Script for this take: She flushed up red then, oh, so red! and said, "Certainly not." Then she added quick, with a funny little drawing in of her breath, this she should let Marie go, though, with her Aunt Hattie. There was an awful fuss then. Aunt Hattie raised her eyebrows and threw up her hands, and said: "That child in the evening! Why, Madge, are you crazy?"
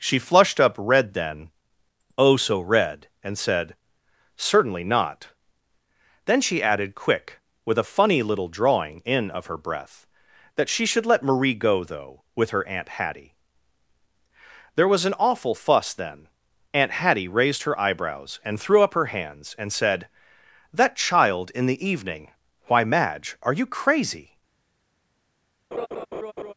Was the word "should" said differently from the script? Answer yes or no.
no